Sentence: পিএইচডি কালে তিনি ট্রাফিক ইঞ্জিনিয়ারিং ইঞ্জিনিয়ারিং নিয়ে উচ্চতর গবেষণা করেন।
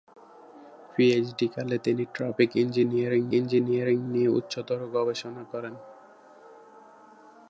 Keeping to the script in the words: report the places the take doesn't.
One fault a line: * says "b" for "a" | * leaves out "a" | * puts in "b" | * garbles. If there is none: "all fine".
all fine